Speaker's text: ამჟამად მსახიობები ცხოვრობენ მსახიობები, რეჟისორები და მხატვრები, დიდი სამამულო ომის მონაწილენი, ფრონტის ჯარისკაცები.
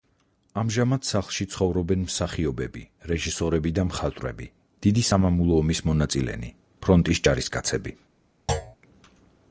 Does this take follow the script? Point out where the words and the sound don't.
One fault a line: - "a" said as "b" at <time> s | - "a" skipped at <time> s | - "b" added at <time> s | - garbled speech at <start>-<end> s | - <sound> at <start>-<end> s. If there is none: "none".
- "მსახიობები" said as "სახლში" at 1.1 s
- thud at 8.5-8.8 s